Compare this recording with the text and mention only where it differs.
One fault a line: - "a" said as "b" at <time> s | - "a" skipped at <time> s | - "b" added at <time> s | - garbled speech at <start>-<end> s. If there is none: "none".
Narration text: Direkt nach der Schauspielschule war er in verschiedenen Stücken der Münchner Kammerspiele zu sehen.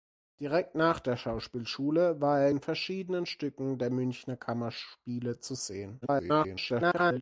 - garbled speech at 6.0-7.2 s